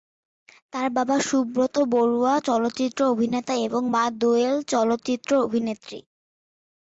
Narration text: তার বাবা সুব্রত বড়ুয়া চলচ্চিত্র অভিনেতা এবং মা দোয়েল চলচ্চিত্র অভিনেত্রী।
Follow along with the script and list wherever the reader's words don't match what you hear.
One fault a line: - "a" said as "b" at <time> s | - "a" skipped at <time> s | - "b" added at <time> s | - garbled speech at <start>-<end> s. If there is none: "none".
none